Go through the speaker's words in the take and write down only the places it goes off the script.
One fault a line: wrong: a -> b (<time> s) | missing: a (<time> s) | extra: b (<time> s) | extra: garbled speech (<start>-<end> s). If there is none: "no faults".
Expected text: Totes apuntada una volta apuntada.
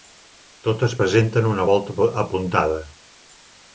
wrong: apuntada -> presenten (1.0 s)